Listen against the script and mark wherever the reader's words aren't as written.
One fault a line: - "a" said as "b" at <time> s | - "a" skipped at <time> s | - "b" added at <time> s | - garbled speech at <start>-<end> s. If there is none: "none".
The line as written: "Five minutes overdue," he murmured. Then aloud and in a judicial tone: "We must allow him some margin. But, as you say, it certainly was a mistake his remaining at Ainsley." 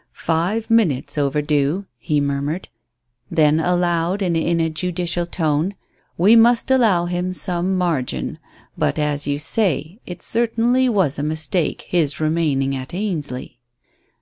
none